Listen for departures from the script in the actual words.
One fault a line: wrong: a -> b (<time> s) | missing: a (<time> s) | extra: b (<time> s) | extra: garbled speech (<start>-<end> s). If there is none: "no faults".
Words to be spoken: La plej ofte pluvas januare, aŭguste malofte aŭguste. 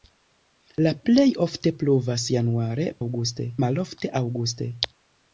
no faults